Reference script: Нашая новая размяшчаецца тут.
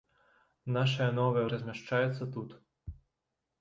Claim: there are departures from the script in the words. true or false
false